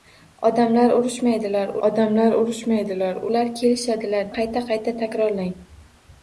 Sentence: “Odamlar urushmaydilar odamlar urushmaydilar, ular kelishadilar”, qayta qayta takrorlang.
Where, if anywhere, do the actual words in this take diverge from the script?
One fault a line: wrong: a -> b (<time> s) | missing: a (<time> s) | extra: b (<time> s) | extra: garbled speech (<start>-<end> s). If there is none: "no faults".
no faults